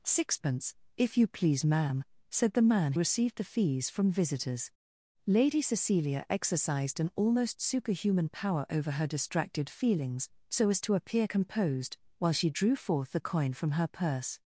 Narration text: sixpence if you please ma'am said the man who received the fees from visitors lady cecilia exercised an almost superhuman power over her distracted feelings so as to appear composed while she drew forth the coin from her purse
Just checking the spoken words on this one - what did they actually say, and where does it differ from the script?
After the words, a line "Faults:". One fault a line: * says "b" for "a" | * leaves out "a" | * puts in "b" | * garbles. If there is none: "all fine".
sixpence if you please ma'am said the man received the fees from visitors lady cecilia exercised an almost superhuman power over her distracted feelings so as to appear composed while she drew forth the coin from her purse
Faults:
* leaves out "who"